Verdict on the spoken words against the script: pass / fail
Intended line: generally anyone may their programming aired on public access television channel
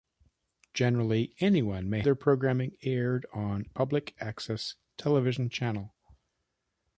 pass